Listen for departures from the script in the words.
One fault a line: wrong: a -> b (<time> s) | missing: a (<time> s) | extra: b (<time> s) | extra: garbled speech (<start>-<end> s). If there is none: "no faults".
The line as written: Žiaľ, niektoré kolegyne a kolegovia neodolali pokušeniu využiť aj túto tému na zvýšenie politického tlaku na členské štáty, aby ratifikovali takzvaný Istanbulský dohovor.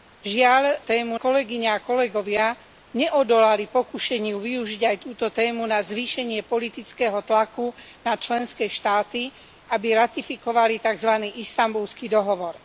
wrong: niektoré -> tému (0.8 s)